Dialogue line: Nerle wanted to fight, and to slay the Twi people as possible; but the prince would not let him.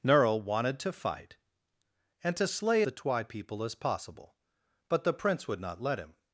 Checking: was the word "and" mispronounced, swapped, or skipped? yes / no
no